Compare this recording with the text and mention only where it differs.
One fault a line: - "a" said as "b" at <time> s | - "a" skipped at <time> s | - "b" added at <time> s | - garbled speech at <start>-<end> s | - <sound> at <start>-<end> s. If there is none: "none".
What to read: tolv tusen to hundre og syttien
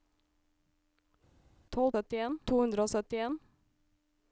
- "tusen" said as "syttien" at 1.9 s